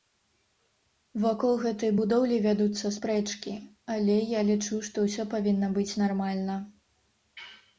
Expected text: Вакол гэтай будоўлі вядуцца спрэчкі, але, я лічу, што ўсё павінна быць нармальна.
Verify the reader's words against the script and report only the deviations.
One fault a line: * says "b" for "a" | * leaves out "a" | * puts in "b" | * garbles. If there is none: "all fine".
all fine